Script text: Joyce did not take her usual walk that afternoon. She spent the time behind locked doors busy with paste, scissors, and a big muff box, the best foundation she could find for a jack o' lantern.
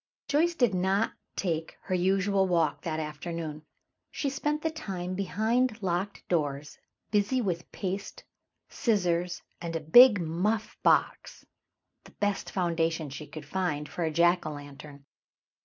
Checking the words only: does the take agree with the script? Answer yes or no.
yes